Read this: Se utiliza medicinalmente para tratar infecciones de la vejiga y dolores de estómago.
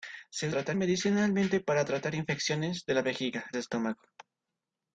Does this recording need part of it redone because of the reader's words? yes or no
yes